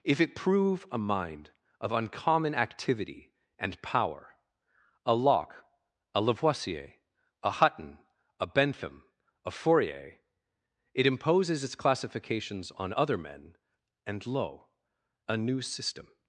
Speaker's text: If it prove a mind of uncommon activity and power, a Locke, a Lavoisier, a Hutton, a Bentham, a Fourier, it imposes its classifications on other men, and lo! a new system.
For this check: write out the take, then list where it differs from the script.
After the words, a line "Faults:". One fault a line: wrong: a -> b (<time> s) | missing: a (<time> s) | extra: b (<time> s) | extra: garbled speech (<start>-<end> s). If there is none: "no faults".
If it prove a mind of uncommon activity and power, a Locke, a Lavoisier, a Hutton, a Bentham, a Fourier, it imposes its classifications on other men, and lo! a new system.
Faults:
no faults